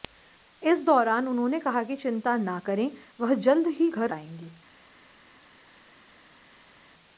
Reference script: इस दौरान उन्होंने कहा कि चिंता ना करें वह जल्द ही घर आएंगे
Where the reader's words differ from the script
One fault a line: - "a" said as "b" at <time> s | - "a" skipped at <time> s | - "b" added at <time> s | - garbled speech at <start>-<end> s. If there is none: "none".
none